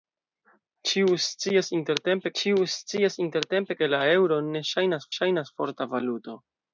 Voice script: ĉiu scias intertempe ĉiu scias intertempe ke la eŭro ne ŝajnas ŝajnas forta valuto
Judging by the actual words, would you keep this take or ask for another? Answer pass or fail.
pass